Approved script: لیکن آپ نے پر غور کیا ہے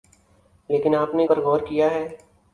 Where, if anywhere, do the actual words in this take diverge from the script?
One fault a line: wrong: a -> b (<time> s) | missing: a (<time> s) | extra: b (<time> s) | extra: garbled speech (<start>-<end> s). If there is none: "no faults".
no faults